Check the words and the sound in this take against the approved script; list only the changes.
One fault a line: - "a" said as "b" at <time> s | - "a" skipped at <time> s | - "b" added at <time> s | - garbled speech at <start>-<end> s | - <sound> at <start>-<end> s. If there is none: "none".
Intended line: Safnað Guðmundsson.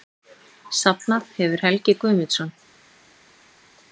- "hefur Helgi" added at 1.4 s